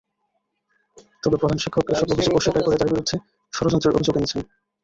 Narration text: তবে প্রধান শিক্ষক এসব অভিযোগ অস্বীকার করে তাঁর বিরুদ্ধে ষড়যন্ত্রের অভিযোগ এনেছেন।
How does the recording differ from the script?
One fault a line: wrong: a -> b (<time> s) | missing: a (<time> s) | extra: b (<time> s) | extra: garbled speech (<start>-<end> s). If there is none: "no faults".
no faults